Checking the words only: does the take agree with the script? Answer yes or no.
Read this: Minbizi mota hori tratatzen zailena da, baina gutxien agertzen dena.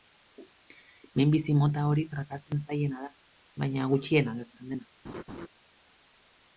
yes